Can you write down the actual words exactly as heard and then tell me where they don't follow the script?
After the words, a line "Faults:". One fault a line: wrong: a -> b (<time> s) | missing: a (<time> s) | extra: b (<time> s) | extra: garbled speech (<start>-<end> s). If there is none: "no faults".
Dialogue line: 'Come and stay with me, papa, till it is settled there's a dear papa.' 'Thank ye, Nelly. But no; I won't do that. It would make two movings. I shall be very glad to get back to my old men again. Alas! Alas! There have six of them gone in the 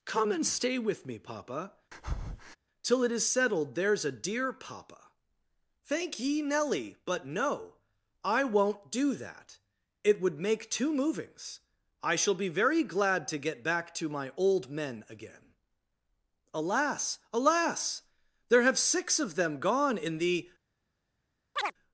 'Come and stay with me, papa, till it is settled there's a dear papa.' 'Thank ye, Nelly. But no; I won't do that. It would make two movings. I shall be very glad to get back to my old men again. Alas! Alas! There have six of them gone in the
Faults:
no faults